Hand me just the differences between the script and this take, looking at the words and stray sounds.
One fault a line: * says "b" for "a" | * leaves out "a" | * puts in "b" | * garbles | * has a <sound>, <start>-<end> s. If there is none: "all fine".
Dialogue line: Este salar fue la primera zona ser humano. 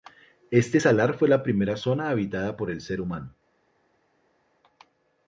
* puts in "habitada por el"